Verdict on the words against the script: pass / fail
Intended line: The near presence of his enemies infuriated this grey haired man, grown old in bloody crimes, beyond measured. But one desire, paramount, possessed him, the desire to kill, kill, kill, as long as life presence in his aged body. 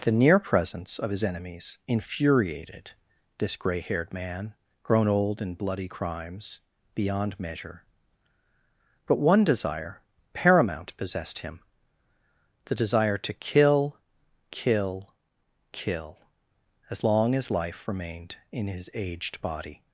fail